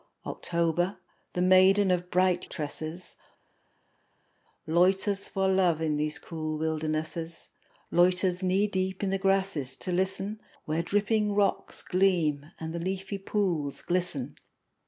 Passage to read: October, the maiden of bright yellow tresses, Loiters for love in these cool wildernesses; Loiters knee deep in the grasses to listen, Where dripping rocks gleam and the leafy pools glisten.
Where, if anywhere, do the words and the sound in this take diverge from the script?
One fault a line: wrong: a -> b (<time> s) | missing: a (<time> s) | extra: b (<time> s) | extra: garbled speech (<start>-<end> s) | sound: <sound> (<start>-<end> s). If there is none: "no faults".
missing: yellow (2.5 s)